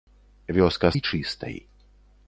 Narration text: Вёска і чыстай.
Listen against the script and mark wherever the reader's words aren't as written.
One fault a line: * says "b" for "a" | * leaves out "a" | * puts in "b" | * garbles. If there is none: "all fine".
all fine